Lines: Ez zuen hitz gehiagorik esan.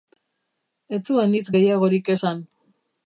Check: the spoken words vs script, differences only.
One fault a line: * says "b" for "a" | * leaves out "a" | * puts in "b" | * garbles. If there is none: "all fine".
all fine